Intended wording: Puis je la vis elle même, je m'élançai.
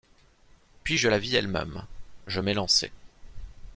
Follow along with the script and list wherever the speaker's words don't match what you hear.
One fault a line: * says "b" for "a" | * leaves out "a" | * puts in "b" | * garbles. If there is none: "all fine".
all fine